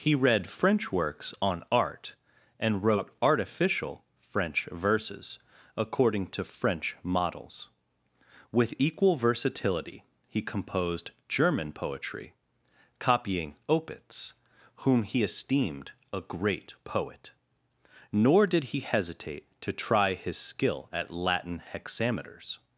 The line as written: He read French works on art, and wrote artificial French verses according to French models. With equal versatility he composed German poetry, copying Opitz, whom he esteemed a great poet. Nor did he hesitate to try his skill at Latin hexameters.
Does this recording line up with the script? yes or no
yes